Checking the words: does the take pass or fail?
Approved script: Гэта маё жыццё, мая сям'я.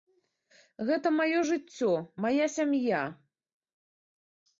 pass